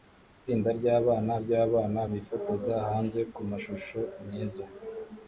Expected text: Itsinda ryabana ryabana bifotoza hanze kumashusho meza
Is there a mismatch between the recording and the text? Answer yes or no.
no